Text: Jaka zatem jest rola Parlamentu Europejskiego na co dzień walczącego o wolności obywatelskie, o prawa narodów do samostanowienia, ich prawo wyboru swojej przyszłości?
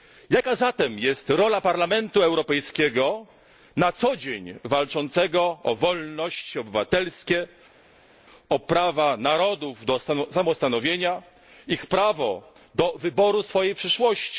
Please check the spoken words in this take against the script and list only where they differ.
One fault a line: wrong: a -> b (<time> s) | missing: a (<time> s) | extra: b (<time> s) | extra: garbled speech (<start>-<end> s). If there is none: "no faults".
extra: do (12.7 s)